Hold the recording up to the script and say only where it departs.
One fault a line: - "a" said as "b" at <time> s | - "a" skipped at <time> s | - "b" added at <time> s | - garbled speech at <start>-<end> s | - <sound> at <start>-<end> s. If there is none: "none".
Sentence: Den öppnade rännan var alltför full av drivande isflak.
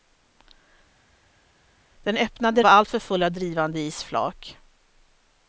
- "rännan" skipped at 2.6 s